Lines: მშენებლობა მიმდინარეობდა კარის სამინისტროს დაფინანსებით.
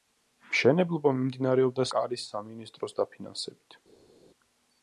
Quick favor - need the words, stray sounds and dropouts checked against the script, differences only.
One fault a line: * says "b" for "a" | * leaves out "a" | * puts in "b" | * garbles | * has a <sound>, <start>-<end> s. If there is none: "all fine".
all fine